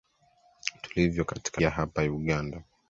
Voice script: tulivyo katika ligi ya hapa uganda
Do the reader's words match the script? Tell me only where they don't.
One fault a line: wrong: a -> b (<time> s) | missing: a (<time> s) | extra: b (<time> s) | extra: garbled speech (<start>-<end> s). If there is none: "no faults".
missing: ligi (1.6 s)